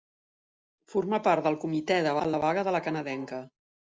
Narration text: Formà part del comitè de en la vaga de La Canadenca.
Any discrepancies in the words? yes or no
no